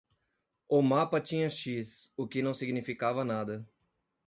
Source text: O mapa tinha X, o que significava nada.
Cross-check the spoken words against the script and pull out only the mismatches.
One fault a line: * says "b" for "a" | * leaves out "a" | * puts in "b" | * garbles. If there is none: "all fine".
* puts in "não"